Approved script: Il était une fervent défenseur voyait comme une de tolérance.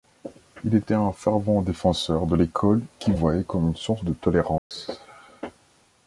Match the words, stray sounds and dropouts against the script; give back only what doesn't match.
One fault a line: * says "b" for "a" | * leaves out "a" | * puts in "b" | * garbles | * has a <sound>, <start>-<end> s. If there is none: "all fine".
* says "un" for "une"
* puts in "de l'école qu'il"
* puts in "source"
* has a dropout, 4.6-4.7 s